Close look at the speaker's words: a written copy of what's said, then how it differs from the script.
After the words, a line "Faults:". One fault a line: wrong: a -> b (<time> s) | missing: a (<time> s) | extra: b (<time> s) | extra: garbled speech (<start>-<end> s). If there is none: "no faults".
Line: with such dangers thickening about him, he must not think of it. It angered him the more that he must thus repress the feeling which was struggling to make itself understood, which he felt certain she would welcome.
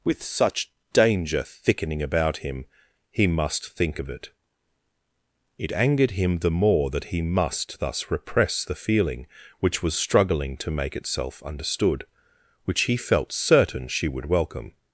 with such danger thickening about him, he must think of it. It angered him the more that he must thus repress the feeling which was struggling to make itself understood, which he felt certain she would welcome.
Faults:
wrong: dangers -> danger (0.9 s)
missing: not (3.7 s)